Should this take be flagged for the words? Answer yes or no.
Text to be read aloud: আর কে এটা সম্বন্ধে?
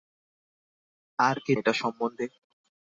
no